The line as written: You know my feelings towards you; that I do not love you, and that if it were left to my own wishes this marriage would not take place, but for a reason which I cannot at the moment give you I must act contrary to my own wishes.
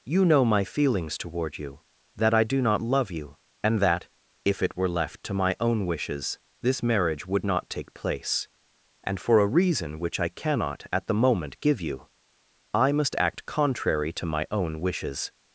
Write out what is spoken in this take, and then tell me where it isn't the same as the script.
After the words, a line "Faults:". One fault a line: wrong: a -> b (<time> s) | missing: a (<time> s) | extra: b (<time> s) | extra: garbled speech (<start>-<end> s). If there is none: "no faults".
You know my feelings toward you; that I do not love you, and that if it were left to my own wishes this marriage would not take place, and for a reason which I cannot at the moment give you I must act contrary to my own wishes.
Faults:
wrong: towards -> toward (1.2 s)
wrong: but -> and (9.0 s)